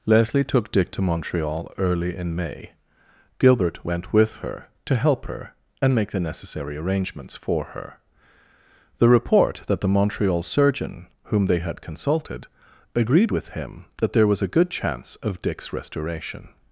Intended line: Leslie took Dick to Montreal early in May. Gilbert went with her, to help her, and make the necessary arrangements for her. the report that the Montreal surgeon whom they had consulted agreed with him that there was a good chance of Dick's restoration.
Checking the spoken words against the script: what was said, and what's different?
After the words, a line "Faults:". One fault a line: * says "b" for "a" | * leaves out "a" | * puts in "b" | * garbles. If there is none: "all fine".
Leslie took Dick to Montreal early in May. Gilbert went with her, to help her, and make the necessary arrangements for her. the report that the Montreal surgeon whom they had consulted agreed with him that there was a good chance of Dick's restoration.
Faults:
all fine